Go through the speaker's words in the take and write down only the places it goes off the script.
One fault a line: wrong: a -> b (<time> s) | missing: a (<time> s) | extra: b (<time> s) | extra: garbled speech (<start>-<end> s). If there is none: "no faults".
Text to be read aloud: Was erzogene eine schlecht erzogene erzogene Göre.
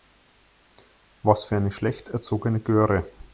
wrong: erzogene -> für (1.4 s)
missing: erzogene (2.6 s)